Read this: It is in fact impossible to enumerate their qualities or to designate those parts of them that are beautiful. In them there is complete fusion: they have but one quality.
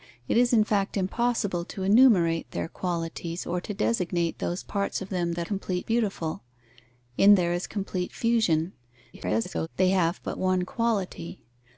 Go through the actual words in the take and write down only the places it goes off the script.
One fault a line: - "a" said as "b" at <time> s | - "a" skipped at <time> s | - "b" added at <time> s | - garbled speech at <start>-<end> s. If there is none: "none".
- "are" said as "complete" at 5.4 s
- "them" skipped at 7.3 s
- garbled speech at 9.1-9.7 s